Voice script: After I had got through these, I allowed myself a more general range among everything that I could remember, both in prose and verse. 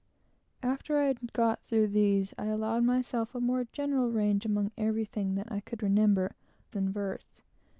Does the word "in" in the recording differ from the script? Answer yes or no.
yes